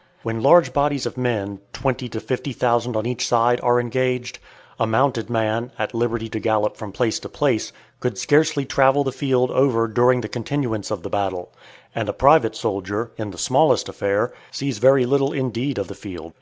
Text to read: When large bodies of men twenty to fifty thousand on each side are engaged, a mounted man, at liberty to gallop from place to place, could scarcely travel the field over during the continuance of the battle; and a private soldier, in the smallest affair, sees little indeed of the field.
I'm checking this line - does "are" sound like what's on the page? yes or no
yes